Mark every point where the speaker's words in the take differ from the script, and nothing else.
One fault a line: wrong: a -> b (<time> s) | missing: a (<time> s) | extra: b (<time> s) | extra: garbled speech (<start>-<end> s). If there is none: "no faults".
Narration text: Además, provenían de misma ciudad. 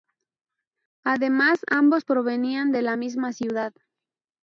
extra: ambos (1.7 s)
extra: la (2.8 s)